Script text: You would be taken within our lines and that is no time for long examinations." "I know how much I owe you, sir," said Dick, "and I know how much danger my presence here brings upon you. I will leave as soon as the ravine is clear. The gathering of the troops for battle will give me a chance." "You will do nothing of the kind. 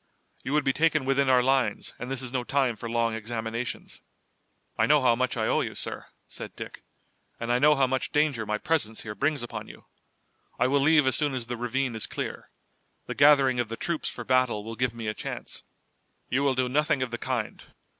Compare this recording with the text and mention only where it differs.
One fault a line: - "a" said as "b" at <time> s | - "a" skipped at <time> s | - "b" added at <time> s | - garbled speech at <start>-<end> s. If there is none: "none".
- "that" said as "this" at 2.1 s